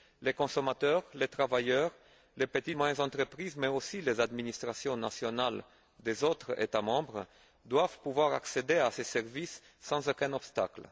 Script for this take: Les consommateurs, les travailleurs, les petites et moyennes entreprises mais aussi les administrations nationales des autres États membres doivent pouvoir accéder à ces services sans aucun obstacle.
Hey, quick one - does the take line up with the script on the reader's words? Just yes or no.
yes